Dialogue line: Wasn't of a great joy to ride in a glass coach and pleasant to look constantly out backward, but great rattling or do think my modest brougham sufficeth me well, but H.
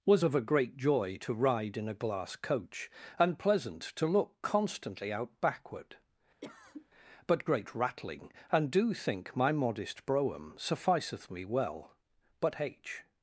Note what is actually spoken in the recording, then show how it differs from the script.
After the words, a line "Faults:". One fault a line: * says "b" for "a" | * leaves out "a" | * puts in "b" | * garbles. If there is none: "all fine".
Was of a great joy to ride in a glass coach and pleasant to look constantly out backward, but great rattling and do think my modest brougham sufficeth me well, but H.
Faults:
* says "Was" for "Wasn't"
* says "and" for "or"